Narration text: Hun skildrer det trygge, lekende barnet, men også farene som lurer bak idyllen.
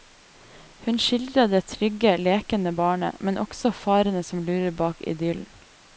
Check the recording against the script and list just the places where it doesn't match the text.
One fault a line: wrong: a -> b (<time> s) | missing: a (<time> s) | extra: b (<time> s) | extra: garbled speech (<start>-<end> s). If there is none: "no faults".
no faults